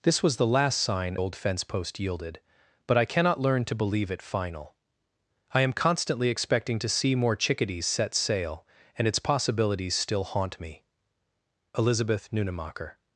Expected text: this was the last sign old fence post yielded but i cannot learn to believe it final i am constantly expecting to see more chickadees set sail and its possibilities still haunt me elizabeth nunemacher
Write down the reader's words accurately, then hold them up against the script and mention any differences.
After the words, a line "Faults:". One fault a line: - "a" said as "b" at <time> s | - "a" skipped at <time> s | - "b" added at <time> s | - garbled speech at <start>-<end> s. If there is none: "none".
this was the last sign old fence post yielded but i cannot learn to believe it final i am constantly expecting to see more chickadees set sail and its possibilities still haunt me elizabeth nunemacher
Faults:
none